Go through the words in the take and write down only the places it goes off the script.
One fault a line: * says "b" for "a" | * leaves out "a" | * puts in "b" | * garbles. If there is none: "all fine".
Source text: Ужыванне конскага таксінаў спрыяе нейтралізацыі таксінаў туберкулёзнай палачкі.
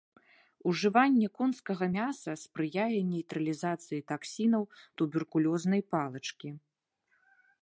* says "мяса" for "таксінаў"